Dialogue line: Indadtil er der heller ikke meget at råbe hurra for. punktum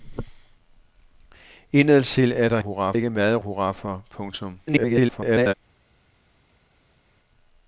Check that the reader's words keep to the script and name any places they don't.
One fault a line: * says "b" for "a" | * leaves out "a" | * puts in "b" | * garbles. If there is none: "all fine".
* says "hurra" for "heller"
* leaves out "råbe"
* garbles